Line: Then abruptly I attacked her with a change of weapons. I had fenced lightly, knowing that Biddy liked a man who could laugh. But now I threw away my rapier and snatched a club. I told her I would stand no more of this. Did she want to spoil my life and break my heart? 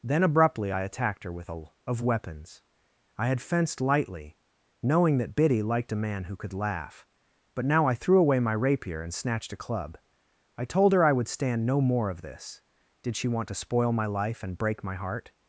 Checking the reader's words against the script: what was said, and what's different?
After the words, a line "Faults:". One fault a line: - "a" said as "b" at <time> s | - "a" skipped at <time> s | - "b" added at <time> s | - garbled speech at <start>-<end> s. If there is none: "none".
Then abruptly I attacked her with a of weapons. I had fenced lightly, knowing that Biddy liked a man who could laugh. But now I threw away my rapier and snatched a club. I told her I would stand no more of this. Did she want to spoil my life and break my heart?
Faults:
- "change" skipped at 1.6 s